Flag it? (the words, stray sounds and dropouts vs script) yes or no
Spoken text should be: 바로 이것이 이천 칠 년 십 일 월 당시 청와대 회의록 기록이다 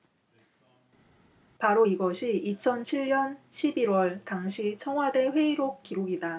no